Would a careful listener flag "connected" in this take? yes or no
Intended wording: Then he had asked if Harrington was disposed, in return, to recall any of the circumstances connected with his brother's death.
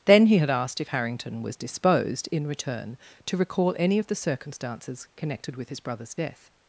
no